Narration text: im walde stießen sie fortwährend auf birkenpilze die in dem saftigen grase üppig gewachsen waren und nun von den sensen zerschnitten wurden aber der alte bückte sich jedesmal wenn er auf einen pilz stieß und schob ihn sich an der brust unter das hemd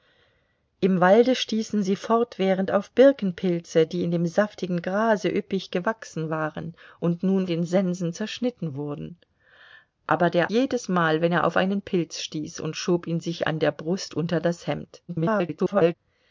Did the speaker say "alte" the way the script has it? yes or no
no